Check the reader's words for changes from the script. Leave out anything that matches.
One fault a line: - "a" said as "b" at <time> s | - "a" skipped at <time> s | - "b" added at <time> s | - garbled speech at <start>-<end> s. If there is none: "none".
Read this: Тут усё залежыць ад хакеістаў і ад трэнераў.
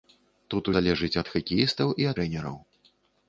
- "усё" skipped at 0.7 s
- "ад" skipped at 2.1 s